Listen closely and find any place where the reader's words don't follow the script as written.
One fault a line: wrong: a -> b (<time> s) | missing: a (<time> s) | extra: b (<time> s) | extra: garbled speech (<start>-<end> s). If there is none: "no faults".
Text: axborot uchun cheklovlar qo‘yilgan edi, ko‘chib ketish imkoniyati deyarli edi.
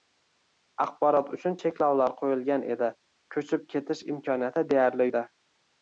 no faults